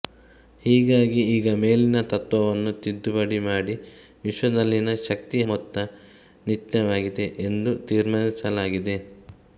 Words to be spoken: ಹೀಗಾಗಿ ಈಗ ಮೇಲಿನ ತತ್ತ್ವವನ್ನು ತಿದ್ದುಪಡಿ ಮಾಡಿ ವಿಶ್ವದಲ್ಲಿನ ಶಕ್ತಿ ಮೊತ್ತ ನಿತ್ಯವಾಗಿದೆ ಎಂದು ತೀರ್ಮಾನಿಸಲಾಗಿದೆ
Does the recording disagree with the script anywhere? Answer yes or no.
no